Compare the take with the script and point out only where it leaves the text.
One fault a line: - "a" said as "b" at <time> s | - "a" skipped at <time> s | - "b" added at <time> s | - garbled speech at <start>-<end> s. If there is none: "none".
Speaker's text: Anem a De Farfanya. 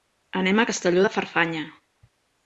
- "Castelló" added at 0.7 s